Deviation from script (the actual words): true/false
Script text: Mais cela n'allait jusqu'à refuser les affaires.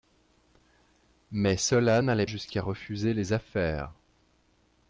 false